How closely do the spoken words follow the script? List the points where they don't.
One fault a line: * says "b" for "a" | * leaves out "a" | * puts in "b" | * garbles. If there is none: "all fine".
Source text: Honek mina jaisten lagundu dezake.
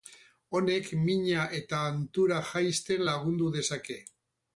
* puts in "eta hantura"